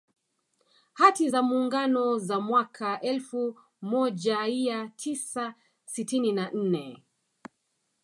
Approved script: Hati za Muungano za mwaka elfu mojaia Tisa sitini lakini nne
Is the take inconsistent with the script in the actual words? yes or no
yes